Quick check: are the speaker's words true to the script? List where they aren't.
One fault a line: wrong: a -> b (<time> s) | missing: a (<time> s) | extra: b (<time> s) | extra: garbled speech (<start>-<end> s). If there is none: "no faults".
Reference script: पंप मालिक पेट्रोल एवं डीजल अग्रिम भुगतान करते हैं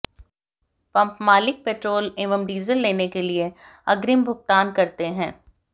extra: लेने के लिए (2.8 s)